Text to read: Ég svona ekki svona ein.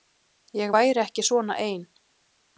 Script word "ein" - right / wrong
right